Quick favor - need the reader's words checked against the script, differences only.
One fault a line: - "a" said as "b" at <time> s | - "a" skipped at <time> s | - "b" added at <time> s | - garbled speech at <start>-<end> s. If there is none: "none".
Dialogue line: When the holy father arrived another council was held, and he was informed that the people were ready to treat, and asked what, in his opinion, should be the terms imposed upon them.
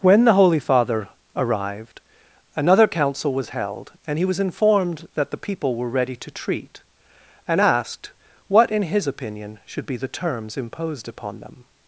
none